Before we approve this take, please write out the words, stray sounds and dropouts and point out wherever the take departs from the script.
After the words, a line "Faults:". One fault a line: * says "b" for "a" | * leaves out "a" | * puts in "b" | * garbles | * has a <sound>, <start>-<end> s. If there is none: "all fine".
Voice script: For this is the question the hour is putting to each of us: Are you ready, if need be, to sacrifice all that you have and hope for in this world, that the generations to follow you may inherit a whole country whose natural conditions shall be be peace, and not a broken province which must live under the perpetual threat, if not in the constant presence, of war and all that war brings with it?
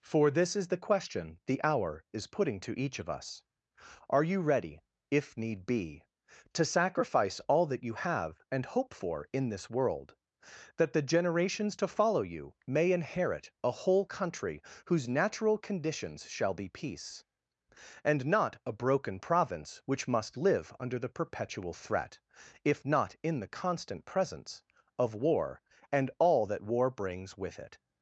For this is the question the hour is putting to each of us: Are you ready, if need be, to sacrifice all that you have and hope for in this world, that the generations to follow you may inherit a whole country whose natural conditions shall be peace, and not a broken province which must live under the perpetual threat, if not in the constant presence, of war and all that war brings with it?
Faults:
* leaves out "be"